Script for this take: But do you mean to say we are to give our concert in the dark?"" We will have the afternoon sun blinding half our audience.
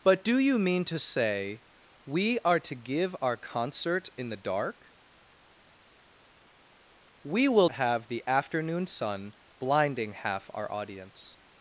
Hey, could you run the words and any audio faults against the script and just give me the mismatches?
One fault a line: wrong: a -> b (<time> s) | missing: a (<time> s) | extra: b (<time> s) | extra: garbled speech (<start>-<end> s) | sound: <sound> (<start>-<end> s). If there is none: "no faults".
no faults